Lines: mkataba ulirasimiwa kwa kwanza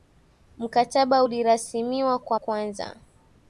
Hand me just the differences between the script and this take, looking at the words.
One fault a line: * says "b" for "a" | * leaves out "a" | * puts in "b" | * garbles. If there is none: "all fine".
all fine